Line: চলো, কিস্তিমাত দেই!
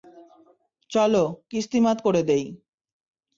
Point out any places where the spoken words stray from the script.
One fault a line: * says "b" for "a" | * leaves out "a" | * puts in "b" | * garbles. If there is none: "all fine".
* puts in "করে"